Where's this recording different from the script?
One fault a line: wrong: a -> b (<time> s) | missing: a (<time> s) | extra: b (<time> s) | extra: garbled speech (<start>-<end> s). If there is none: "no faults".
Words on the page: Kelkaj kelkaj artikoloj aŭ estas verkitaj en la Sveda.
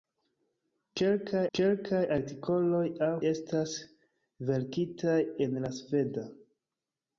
no faults